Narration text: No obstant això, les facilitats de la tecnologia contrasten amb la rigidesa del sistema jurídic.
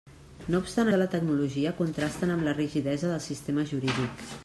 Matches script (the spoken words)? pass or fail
fail